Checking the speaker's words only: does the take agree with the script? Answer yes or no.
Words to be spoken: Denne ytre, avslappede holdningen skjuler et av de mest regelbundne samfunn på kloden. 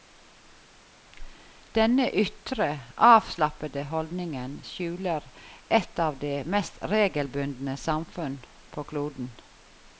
yes